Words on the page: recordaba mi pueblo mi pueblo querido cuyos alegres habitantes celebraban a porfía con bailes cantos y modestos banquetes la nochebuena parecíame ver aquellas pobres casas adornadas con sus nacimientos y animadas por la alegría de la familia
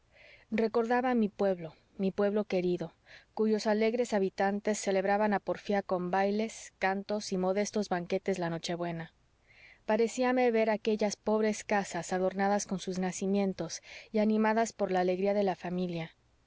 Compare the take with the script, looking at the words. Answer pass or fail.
pass